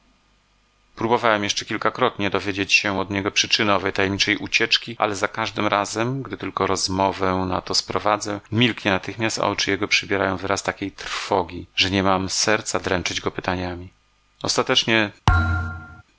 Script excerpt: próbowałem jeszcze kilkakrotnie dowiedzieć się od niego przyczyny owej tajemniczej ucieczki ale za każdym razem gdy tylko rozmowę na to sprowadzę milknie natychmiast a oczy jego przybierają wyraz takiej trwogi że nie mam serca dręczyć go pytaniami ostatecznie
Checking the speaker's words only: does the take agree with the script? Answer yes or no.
yes